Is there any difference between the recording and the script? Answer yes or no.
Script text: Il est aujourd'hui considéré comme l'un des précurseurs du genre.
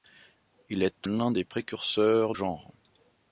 yes